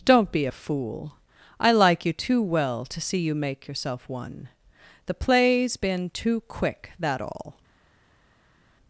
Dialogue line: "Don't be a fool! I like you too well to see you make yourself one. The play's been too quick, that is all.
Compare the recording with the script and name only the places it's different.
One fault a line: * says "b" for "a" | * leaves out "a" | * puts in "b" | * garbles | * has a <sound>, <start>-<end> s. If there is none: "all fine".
* leaves out "is"